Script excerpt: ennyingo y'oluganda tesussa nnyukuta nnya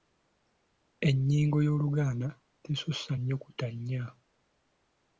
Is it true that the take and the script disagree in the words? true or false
false